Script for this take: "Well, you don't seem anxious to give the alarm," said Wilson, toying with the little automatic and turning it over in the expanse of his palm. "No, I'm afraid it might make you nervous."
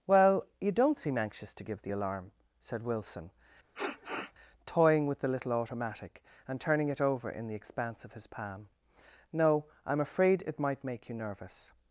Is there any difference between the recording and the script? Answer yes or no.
no